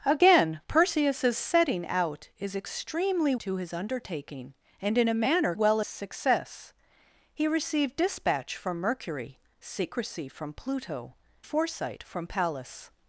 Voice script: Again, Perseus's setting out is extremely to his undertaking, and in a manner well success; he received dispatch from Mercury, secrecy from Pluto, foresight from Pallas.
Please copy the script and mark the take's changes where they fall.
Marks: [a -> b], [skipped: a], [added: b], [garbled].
Again, Perseus's setting out is extremely to his undertaking, and in a manner well success; he received dispatch from Mercury, secrecy from Pluto, foresight from Pallas.